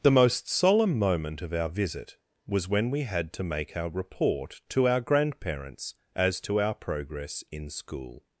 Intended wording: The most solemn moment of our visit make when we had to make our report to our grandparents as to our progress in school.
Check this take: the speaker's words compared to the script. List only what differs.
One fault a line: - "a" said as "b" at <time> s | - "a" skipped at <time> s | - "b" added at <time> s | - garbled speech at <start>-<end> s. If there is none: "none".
- "make" said as "was" at 2.5 s